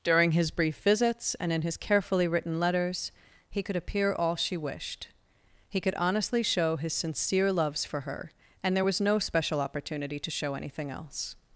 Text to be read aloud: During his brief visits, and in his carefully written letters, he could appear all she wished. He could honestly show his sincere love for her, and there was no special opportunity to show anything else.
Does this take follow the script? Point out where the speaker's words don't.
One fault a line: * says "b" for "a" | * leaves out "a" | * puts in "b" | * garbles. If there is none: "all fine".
* says "loves" for "love"